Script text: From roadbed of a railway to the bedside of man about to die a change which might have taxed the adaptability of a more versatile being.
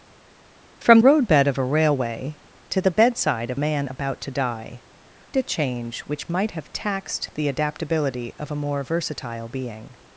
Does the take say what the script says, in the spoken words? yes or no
yes